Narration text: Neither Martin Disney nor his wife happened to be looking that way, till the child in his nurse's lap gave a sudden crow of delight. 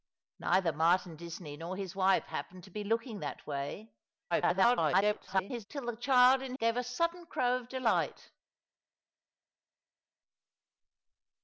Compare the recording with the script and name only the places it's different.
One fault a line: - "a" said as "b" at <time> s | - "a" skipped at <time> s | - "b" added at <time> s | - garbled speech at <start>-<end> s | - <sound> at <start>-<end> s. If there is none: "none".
- garbled speech at 4.3-5.7 s
- "his nurse's lap" skipped at 6.5 s